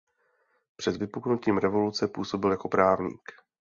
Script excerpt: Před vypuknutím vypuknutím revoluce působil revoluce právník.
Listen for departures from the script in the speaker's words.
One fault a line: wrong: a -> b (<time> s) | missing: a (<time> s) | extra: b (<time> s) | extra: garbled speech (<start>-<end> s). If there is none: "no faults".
missing: vypuknutím (1.6 s)
wrong: revoluce -> jako (2.5 s)